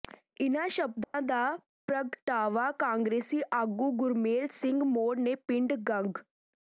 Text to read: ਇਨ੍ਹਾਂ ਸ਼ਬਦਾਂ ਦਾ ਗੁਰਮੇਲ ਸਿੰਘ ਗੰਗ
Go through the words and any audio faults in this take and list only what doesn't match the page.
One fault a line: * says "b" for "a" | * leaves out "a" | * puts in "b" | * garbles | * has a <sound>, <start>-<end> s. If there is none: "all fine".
* has a dropout, 1.0-1.1 s
* puts in "ਪ੍ਰਗਟਾਵਾ ਕਾਂਗਰਸੀ ਆਗੂ"
* puts in "ਮੌੜ ਨੇ ਪਿੰਡ"